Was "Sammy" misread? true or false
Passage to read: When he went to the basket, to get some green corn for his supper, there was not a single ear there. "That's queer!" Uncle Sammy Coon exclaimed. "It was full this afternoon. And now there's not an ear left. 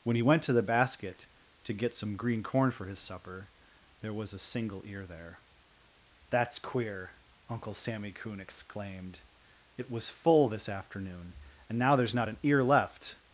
false